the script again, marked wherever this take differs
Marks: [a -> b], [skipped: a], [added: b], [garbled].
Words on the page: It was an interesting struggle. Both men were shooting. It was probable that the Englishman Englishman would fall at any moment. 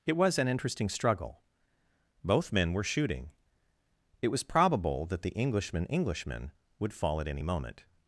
It was an interesting struggle. Both men were shooting. It was probable that the Englishman Englishman would fall at any moment.